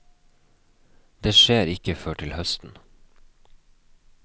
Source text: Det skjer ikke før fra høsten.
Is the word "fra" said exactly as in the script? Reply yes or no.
no